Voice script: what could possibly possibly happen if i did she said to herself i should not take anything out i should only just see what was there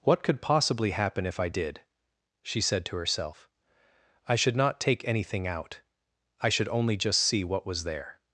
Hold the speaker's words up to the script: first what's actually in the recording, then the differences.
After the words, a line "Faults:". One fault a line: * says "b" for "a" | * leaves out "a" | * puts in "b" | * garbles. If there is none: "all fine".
what could possibly happen if i did she said to herself i should not take anything out i should only just see what was there
Faults:
* leaves out "possibly"